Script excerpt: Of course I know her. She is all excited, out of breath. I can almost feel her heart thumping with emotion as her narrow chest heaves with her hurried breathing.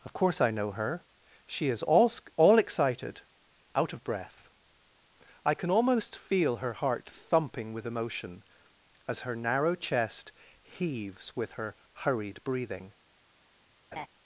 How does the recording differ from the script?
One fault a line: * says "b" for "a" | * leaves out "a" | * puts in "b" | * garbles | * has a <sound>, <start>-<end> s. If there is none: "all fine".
* puts in "all"
* has a laugh, 13.9-14.1 s